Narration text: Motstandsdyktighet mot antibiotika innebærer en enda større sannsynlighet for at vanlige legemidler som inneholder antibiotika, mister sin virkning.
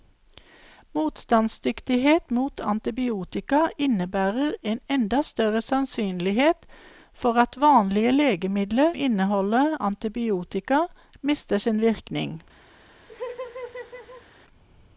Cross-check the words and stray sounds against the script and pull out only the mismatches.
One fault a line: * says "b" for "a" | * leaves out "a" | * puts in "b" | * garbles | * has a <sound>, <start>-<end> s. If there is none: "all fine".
* leaves out "som"
* has a laugh, 13.1-14.3 s